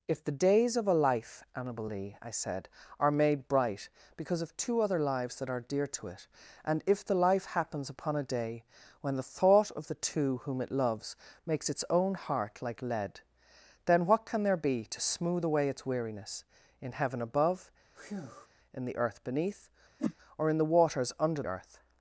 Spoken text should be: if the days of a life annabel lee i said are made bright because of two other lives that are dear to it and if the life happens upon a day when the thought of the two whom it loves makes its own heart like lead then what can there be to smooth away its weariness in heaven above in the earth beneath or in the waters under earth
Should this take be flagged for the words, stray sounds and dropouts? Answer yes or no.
yes